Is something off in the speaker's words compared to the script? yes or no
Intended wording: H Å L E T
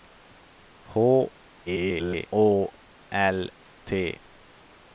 yes